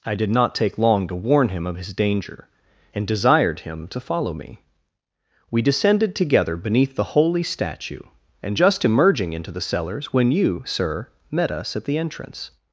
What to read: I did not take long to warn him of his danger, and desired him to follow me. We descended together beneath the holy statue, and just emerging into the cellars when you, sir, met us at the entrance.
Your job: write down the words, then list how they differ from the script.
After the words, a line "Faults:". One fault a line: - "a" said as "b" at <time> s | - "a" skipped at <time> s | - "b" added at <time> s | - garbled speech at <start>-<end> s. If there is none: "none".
I did not take long to warn him of his danger, and desired him to follow me. We descended together beneath the holy statue, and just emerging into the cellars when you, sir, met us at the entrance.
Faults:
none